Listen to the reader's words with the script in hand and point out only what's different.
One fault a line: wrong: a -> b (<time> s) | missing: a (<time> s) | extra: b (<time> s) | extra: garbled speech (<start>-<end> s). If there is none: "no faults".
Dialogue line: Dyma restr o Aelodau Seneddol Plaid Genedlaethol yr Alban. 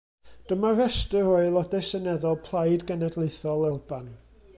missing: yr (3.7 s)